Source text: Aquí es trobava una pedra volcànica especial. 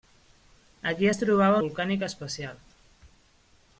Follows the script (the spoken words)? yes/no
no